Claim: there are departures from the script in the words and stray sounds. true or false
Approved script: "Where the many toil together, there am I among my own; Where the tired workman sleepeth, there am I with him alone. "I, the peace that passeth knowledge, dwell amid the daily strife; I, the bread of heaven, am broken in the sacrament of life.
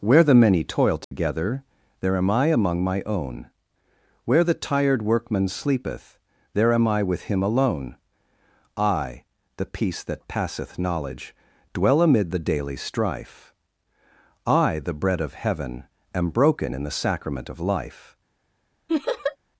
true